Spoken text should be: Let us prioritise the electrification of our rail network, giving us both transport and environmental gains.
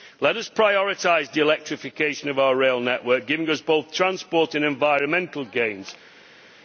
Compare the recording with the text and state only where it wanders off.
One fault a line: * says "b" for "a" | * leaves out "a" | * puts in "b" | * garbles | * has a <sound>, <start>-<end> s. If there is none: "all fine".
all fine